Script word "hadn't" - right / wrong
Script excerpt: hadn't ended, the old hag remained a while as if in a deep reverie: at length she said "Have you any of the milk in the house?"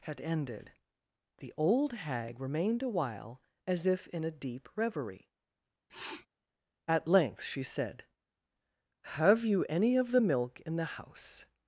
wrong